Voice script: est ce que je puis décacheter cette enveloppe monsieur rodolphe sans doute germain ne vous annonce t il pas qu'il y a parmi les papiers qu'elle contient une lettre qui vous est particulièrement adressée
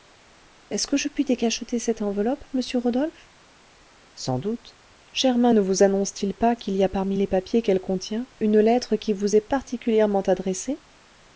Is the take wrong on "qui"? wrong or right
right